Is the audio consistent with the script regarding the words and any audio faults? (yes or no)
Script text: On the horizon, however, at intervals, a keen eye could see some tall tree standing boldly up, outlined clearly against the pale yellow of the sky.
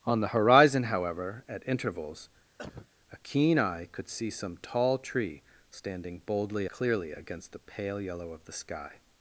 no